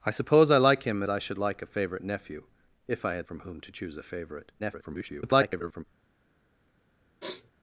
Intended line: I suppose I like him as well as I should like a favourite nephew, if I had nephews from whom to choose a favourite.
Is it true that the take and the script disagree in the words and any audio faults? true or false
true